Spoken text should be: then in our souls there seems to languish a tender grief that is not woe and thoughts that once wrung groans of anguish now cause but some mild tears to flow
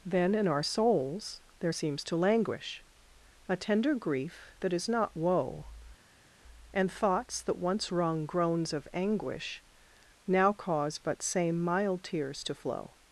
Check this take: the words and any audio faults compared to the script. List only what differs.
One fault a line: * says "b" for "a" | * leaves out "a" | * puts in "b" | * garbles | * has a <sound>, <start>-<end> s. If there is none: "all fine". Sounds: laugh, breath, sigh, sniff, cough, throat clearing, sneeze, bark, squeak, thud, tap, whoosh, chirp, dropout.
* says "same" for "some"